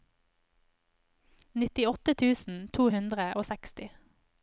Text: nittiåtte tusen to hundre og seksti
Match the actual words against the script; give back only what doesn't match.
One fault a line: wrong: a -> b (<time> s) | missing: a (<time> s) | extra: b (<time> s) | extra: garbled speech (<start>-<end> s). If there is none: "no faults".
no faults